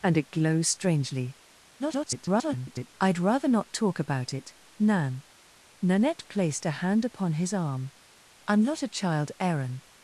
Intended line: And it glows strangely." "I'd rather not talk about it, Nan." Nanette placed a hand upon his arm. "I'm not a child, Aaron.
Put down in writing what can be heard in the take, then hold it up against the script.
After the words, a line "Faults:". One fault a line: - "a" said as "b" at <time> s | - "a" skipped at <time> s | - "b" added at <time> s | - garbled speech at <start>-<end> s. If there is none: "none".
And it glows strangely." [garbled] "I'd rather not talk about it, Nan." Nanette placed a hand upon his arm. "I'm not a child, Aaron.
Faults:
- garbled speech at 1.8-2.9 s